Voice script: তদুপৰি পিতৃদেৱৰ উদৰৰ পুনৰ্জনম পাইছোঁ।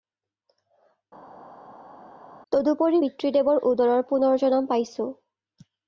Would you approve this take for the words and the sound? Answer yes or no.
yes